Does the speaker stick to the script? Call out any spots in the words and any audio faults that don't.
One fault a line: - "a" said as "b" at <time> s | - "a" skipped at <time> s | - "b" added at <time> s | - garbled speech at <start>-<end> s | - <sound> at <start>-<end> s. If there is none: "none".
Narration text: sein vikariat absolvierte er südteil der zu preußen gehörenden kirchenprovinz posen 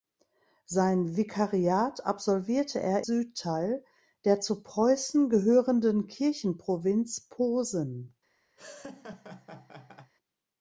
- laugh at 8.6-10.1 s